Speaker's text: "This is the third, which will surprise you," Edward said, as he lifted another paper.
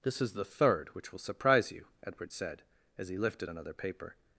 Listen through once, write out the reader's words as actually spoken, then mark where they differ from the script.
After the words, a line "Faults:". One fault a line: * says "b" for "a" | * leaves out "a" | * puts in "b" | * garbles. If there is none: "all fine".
"This is the third, which will surprise you," Edward said, as he lifted another paper.
Faults:
all fine